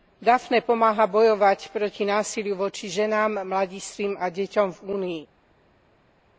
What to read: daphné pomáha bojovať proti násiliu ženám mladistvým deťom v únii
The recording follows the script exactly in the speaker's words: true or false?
false